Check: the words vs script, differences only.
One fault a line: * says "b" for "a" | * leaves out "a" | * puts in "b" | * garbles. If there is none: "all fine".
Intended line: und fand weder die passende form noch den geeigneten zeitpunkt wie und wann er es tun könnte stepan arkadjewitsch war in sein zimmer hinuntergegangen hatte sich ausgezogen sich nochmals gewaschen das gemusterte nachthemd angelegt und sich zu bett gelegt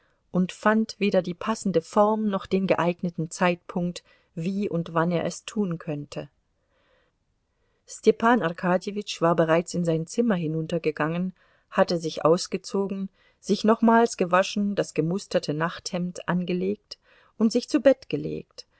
* puts in "bereits"